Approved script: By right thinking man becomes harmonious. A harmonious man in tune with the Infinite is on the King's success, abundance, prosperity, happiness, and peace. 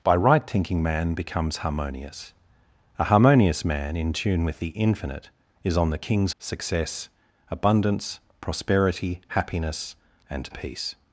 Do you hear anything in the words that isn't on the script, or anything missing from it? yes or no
no